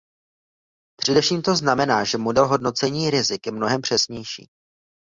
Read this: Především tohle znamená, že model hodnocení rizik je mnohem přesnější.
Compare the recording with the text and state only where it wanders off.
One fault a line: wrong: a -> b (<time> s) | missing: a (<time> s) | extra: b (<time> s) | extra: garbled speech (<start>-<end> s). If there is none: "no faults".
wrong: tohle -> to (1.4 s)